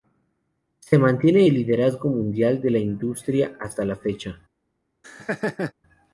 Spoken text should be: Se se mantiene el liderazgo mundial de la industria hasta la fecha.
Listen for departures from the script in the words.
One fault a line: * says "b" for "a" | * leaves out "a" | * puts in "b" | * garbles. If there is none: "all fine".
* leaves out "se"